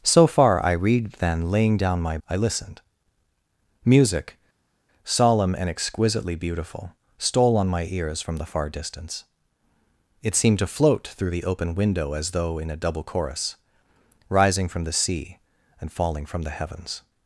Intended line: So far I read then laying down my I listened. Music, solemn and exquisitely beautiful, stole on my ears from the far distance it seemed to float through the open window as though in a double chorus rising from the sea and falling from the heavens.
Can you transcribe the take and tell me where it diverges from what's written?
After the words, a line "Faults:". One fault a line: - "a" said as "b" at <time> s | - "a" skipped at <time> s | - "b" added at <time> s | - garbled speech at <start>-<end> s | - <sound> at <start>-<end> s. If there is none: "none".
So far I read then laying down my I listened. Music, solemn and exquisitely beautiful, stole on my ears from the far distance it seemed to float through the open window as though in a double chorus rising from the sea and falling from the heavens.
Faults:
none